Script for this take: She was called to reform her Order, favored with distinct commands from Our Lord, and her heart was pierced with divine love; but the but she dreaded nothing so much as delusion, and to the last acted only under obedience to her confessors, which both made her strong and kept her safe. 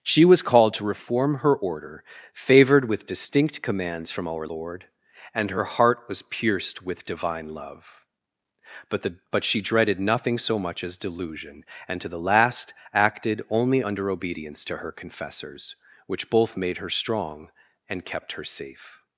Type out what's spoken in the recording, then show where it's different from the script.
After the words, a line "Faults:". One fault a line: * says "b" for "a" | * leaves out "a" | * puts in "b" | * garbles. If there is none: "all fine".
She was called to reform her Order, favored with distinct commands from Our Lord, and her heart was pierced with divine love; but the but she dreaded nothing so much as delusion, and to the last acted only under obedience to her confessors, which both made her strong and kept her safe.
Faults:
all fine